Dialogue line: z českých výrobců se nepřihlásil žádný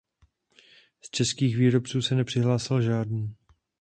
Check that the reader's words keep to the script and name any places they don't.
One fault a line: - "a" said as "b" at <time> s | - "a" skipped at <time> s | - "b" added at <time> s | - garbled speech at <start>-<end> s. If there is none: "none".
none